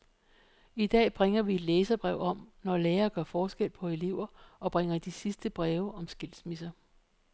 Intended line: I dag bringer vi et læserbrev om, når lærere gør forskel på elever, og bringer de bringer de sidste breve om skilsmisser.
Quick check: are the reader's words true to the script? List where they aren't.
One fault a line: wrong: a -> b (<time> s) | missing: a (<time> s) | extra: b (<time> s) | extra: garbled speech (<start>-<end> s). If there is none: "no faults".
missing: bringer de (5.1 s)